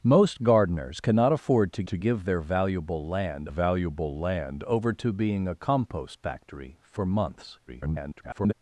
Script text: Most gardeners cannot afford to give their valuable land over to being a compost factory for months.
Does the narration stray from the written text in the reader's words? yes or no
yes